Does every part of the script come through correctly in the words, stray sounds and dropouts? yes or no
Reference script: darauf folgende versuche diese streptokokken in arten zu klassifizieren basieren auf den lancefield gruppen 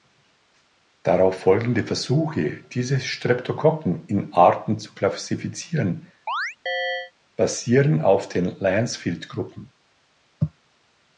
no